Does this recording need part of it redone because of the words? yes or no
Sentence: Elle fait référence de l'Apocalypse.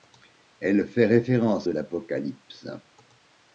no